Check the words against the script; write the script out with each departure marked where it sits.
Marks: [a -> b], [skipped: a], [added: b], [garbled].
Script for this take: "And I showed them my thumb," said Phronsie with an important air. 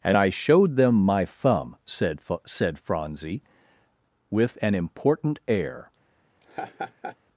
"And I showed them my thumb," said [added: said] Phronsie with an important air.